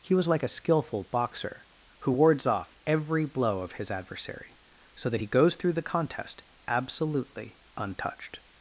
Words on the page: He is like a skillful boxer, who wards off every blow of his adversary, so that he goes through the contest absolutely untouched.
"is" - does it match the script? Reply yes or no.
no